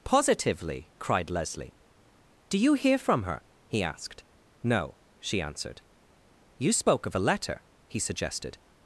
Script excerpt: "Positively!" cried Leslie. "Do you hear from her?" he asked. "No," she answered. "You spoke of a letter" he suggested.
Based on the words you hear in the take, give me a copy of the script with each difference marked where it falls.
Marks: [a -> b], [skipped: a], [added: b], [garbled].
"Positively!" cried Leslie. "Do you hear from her?" he asked. "No," she answered. "You spoke of a letter" he suggested.